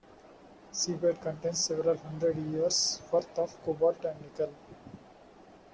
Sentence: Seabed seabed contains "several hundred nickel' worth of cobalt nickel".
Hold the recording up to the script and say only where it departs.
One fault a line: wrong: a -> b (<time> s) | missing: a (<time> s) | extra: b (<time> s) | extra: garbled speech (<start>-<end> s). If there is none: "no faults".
missing: seabed (1.2 s)
wrong: nickel -> years (2.4 s)
extra: and (4.0 s)